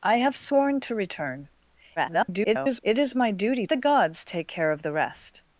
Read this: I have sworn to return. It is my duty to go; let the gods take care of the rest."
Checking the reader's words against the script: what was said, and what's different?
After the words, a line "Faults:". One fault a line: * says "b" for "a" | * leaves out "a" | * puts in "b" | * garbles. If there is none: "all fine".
I have sworn to return. [garbled] It is my duty the gods take care of the rest."
Faults:
* garbles
* leaves out "to go let"